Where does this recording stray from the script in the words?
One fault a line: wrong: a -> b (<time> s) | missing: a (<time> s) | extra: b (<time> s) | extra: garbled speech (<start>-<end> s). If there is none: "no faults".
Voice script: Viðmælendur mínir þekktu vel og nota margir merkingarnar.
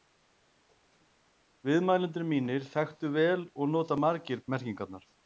no faults